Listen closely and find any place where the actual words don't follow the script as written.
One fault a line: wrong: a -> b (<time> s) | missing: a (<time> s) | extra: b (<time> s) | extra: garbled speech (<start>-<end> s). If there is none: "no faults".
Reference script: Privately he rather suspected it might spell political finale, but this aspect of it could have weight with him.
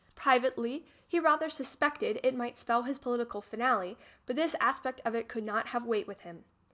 extra: his (2.8 s)
extra: not (5.4 s)